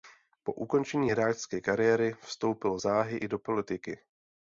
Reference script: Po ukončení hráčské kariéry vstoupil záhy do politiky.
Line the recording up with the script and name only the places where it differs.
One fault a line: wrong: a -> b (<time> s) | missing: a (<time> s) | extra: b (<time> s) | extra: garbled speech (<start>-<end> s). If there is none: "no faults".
extra: i (3.2 s)